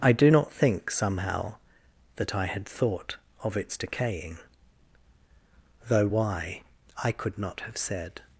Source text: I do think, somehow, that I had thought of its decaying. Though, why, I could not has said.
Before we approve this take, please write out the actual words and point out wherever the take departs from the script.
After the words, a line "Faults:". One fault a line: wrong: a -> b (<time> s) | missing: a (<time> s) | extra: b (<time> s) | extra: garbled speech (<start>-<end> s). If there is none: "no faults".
I do not think, somehow, that I had thought of its decaying. Though, why, I could not have said.
Faults:
extra: not (0.3 s)
wrong: has -> have (7.6 s)